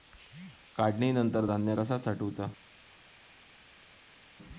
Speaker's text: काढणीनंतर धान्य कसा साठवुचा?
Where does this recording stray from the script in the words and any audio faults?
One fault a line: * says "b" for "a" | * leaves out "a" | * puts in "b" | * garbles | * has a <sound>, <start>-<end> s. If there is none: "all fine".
all fine